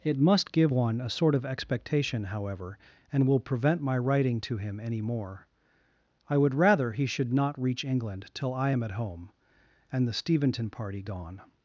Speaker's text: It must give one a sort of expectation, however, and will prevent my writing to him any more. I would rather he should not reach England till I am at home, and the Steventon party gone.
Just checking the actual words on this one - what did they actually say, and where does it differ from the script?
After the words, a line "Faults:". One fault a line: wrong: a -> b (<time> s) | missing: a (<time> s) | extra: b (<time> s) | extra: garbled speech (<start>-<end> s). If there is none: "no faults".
It must give one a sort of expectation, however, and will prevent my writing to him any more. I would rather he should not reach England till I am at home, and the Steventon party gone.
Faults:
no faults